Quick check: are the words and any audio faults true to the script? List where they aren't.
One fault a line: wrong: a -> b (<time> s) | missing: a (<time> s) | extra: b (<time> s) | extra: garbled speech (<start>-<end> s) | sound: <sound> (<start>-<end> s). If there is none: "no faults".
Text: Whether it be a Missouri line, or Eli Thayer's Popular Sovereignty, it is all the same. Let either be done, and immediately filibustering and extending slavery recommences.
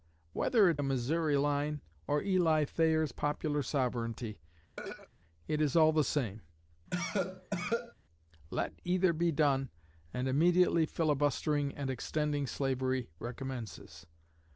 missing: be (0.8 s)
sound: throat clearing (4.8-5.1 s)
sound: cough (6.9-7.9 s)